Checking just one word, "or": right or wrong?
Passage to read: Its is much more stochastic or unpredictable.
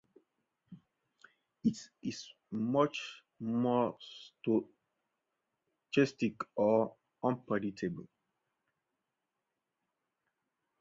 right